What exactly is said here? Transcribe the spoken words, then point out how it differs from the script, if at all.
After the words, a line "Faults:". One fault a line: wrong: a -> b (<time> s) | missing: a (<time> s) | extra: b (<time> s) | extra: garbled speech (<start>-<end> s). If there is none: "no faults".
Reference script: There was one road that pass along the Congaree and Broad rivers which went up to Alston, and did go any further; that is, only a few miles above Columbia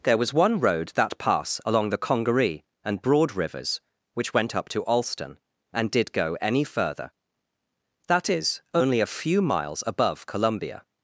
There was one road that pass along the Congaree and Broad rivers which went up to Alston, and did go any further; that is, only a few miles above Columbia
Faults:
no faults